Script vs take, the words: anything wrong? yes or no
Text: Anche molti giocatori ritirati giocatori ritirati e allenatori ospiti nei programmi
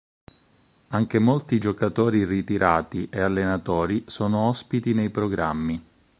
yes